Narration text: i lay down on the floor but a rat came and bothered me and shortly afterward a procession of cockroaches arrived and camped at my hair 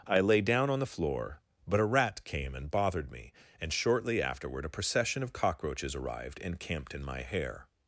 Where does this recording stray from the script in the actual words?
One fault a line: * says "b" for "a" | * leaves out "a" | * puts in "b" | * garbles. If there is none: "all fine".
* says "in" for "at"